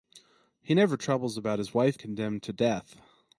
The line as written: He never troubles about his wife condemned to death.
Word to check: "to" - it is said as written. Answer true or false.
true